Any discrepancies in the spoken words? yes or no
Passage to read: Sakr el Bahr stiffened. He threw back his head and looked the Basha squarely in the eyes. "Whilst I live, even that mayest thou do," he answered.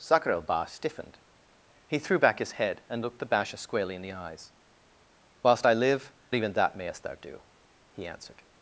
no